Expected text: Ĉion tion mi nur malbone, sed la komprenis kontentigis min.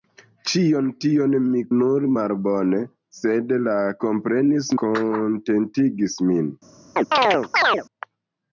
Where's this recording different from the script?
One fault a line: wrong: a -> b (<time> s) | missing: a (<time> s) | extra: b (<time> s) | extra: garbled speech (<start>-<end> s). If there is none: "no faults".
no faults